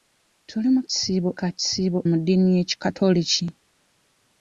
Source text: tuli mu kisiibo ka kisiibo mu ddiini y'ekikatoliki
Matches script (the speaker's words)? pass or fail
pass